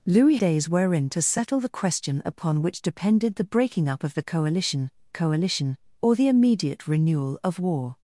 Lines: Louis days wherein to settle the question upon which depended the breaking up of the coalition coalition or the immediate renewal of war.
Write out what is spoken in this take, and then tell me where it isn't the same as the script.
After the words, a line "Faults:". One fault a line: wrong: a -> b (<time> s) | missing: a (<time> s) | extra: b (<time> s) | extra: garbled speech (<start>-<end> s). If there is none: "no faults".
Louis days wherein to settle the question upon which depended the breaking up of the coalition coalition or the immediate renewal of war.
Faults:
no faults